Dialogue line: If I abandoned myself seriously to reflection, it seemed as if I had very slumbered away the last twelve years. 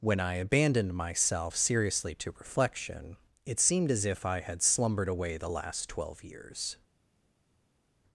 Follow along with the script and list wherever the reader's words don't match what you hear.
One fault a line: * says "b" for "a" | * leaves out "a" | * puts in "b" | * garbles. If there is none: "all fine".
* says "When" for "If"
* leaves out "very"